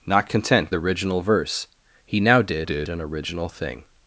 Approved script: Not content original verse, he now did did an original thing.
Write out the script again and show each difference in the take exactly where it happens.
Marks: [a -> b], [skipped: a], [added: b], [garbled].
Not content original verse, he now did did an original thing.